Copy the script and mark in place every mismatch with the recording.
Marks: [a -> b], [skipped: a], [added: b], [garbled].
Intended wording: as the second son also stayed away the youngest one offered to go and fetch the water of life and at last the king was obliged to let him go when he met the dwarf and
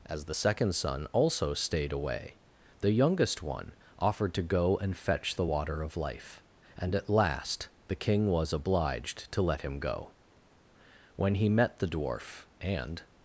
as the second son also stayed away the youngest one offered to go and fetch the water of life and at last the king was obliged to let him go when he met the dwarf and